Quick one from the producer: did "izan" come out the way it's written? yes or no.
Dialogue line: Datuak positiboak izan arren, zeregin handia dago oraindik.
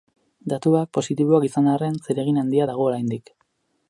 yes